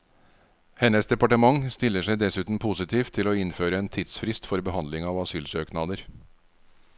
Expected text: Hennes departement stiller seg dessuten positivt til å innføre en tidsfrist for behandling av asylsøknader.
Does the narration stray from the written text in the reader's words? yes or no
no